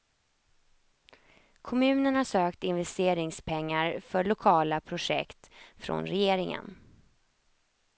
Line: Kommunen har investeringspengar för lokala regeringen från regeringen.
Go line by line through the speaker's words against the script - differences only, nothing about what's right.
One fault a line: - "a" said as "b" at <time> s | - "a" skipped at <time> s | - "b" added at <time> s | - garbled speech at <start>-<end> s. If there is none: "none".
- "sökt" added at 2.2 s
- "regeringen" said as "projekt" at 4.8 s